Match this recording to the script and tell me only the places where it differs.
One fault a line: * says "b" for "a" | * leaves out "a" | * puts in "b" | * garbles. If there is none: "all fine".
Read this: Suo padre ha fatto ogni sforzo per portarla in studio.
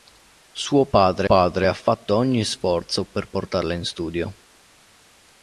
* puts in "padre"